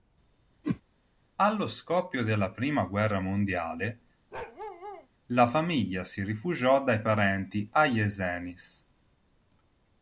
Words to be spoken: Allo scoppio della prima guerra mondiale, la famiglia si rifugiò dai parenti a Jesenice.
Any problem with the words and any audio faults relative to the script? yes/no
yes